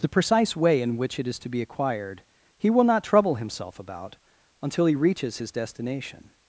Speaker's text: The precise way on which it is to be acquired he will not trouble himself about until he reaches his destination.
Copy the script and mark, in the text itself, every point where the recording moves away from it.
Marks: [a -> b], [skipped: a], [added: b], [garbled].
The precise way [on -> in] which it is to be acquired he will not trouble himself about until he reaches his destination.